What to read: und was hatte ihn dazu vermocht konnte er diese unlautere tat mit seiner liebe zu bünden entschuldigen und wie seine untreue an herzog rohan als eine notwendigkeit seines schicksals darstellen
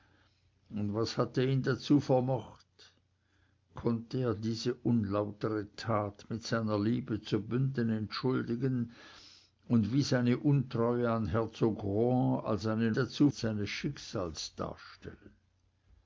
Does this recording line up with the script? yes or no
no